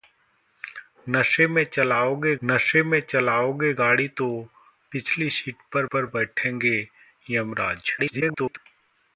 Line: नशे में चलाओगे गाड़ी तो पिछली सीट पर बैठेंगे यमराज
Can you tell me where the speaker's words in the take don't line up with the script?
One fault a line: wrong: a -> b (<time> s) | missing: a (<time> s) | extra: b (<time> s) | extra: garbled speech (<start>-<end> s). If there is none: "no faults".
extra: नशे में चलाओगे (2.4 s)
extra: पर (5.9 s)
extra: garbled speech (8.0-8.6 s)